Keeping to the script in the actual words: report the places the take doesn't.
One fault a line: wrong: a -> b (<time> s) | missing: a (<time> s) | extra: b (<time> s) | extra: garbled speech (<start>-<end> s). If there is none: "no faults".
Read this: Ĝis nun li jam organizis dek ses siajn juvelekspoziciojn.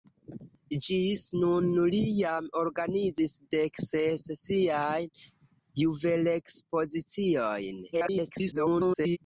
extra: garbled speech (7.9-9.2 s)